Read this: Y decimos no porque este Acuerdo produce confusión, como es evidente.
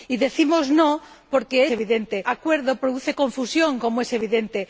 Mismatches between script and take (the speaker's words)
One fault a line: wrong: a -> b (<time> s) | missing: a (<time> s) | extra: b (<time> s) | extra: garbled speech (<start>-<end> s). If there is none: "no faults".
wrong: este -> evidente (1.7 s)